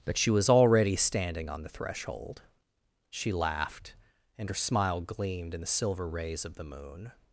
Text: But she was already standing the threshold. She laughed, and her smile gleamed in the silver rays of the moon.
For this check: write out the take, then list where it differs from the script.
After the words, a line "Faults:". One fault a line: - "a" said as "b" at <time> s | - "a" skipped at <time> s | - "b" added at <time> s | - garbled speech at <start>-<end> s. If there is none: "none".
But she was already standing on the threshold. She laughed, and her smile gleamed in the silver rays of the moon.
Faults:
- "on" added at 1.5 s